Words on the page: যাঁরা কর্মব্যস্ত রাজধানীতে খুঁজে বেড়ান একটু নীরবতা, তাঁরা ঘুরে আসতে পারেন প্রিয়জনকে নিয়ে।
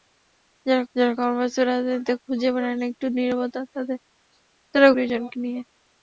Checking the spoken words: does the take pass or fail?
fail